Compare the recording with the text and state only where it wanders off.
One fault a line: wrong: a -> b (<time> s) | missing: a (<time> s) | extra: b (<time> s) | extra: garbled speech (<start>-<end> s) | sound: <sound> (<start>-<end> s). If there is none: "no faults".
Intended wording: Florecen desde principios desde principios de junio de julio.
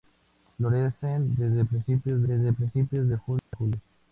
sound: dropout (3.4-3.5 s)